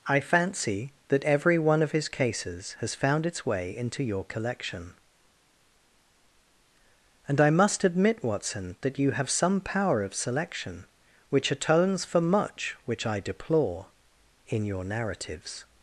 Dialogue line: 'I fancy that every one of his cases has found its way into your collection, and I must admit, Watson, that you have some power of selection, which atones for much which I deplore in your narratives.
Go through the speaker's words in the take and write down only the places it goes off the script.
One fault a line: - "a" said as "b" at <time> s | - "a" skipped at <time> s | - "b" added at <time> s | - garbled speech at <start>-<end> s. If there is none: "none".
none